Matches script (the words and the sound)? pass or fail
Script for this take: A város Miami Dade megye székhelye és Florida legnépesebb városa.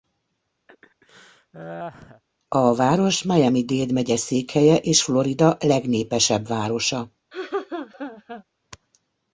fail